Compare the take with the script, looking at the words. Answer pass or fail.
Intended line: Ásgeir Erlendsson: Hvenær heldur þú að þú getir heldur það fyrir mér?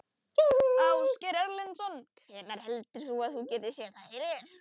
fail